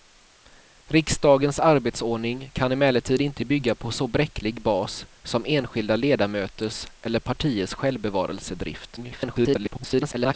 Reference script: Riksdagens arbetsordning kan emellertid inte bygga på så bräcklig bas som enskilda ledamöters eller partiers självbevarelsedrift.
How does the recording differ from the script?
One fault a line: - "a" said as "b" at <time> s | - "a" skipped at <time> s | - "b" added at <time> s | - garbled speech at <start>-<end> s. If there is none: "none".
- garbled speech at 9.0-10.3 s